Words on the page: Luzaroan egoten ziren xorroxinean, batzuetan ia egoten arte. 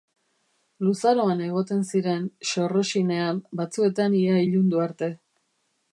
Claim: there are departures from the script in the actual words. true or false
true